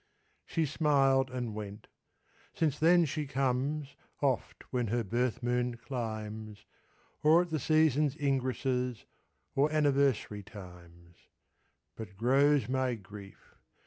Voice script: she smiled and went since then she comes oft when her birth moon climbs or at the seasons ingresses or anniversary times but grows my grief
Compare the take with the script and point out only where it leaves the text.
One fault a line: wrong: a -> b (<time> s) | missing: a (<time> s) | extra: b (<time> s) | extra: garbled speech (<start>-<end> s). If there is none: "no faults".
no faults